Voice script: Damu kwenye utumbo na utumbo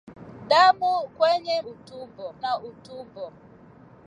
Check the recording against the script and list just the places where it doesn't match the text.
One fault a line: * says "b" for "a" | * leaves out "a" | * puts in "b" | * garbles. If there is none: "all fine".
all fine